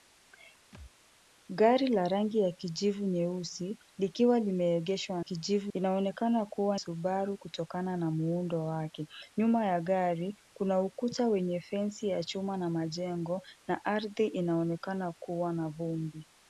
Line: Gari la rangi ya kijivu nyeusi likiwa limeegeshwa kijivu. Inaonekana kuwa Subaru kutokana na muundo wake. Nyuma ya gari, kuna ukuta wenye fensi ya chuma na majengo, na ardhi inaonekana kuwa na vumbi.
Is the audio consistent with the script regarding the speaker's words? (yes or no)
yes